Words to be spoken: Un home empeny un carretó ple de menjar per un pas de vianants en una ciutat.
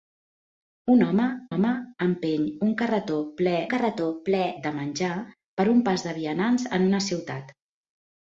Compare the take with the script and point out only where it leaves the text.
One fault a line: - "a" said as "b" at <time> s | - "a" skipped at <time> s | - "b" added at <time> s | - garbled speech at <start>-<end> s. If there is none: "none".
- "home" added at 1.5 s
- "carretó ple" added at 3.7 s